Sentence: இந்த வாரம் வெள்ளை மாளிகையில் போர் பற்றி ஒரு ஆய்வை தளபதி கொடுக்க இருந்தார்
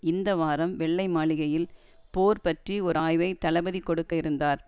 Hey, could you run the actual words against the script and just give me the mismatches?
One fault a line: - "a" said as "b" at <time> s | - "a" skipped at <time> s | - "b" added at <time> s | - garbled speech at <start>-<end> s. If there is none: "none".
none